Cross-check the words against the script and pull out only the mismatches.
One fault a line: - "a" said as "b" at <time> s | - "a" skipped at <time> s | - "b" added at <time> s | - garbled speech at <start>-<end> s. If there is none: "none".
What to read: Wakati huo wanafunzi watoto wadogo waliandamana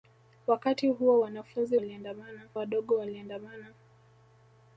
- "watoto" said as "waliandamana" at 1.7 s